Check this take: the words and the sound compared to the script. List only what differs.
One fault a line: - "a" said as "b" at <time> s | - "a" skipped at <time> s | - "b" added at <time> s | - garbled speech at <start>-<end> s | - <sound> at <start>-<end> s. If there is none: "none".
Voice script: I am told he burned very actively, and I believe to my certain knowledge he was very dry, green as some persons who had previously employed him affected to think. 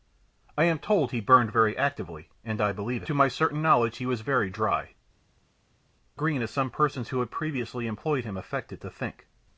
none